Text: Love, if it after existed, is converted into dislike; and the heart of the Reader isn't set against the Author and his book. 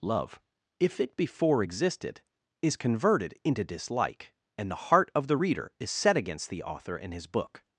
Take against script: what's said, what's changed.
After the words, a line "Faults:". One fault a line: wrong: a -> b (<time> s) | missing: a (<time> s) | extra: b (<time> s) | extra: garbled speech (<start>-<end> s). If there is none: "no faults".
Love, if it before existed, is converted into dislike; and the heart of the Reader is set against the Author and his book.
Faults:
wrong: after -> before (1.1 s)
wrong: isn't -> is (5.8 s)